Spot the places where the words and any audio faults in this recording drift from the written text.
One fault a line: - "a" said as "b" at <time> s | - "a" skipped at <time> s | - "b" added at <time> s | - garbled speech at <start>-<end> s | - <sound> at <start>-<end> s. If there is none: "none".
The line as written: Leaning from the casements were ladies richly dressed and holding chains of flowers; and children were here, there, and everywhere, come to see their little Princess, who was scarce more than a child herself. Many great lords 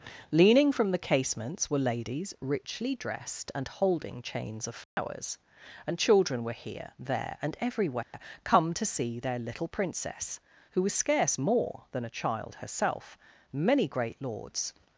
- dropout at 4.8-5.0 s
- dropout at 8.0-8.1 s